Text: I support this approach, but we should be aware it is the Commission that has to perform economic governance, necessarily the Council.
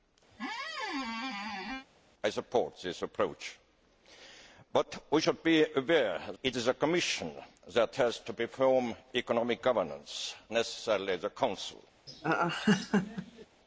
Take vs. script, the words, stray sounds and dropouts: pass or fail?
fail